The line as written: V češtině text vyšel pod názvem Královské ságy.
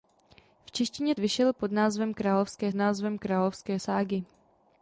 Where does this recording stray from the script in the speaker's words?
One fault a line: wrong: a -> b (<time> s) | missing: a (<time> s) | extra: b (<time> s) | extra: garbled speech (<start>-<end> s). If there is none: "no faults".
missing: text (1.1 s)
extra: názvem Královské (2.7 s)